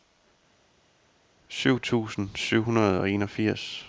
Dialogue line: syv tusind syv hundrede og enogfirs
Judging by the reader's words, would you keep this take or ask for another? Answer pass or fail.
pass